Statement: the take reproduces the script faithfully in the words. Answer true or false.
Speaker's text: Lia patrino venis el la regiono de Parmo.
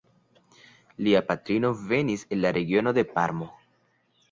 true